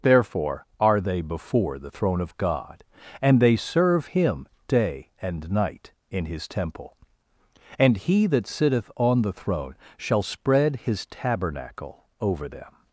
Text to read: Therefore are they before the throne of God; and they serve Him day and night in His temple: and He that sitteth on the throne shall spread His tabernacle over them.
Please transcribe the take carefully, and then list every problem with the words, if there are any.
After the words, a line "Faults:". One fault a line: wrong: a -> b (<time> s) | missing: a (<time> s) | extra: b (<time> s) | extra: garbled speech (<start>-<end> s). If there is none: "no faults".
Therefore are they before the throne of God; and they serve Him day and night in His temple: and He that sitteth on the throne shall spread His tabernacle over them.
Faults:
no faults